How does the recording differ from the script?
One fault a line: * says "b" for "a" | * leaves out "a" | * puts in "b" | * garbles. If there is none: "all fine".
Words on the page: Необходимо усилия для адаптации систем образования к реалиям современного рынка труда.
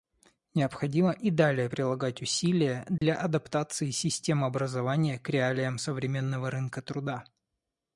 * puts in "и далее прилагать"